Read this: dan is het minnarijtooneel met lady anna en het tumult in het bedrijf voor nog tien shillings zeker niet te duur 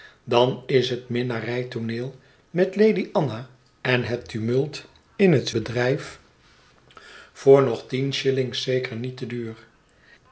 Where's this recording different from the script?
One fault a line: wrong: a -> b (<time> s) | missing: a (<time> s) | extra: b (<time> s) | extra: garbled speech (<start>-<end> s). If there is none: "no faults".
no faults